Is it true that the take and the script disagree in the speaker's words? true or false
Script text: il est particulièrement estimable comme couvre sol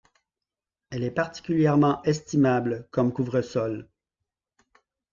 true